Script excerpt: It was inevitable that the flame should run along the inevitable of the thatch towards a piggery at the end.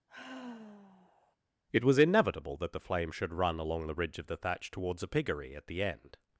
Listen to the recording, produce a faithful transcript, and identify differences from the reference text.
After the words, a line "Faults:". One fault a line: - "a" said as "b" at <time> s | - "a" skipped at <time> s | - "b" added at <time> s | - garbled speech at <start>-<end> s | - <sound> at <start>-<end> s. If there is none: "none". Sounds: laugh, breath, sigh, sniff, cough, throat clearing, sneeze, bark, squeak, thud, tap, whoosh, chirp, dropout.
It was inevitable that the flame should run along the ridge of the thatch towards a piggery at the end.
Faults:
- sigh at 0.1-1.4 s
- "inevitable" said as "ridge" at 3.9 s